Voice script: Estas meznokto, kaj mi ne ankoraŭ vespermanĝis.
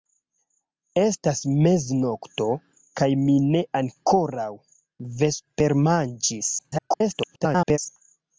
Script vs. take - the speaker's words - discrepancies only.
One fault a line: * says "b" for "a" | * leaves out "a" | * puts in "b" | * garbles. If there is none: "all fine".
* garbles